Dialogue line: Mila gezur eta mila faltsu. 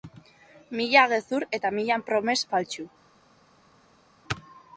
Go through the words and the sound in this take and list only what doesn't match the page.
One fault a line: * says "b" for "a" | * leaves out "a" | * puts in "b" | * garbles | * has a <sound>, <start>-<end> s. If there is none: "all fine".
* puts in "promes"